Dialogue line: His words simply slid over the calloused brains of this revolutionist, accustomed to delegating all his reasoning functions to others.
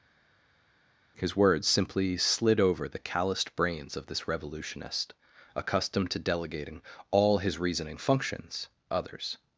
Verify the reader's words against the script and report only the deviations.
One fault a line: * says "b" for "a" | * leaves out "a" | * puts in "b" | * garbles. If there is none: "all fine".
* leaves out "to"